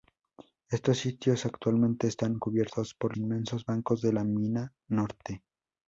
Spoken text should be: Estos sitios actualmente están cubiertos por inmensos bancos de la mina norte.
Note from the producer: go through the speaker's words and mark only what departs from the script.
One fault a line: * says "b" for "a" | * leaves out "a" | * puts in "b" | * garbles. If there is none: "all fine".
all fine